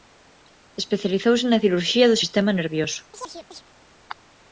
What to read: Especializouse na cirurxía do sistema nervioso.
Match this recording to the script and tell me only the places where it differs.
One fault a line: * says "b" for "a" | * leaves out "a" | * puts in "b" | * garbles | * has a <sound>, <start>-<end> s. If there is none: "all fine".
* has a chirp, 3.1-3.6 s